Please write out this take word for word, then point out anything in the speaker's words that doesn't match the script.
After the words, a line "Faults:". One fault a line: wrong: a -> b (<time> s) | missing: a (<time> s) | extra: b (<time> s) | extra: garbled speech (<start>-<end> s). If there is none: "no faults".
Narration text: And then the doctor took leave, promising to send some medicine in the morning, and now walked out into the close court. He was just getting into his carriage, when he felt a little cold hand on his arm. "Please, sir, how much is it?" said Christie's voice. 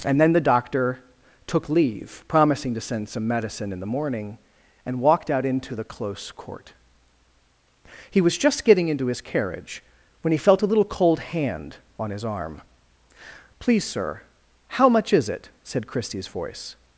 And then the doctor took leave, promising to send some medicine in the morning, and walked out into the close court. He was just getting into his carriage, when he felt a little cold hand on his arm. "Please, sir, how much is it?" said Christie's voice.
Faults:
missing: now (5.0 s)